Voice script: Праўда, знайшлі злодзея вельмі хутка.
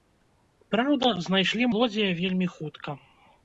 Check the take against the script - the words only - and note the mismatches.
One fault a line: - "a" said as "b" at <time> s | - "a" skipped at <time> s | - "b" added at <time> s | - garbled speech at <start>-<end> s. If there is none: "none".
none